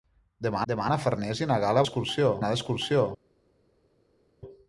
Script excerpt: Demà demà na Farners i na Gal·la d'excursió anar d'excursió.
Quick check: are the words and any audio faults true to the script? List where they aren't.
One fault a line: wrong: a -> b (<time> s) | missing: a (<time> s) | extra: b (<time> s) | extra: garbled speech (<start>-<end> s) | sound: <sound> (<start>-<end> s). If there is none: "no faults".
no faults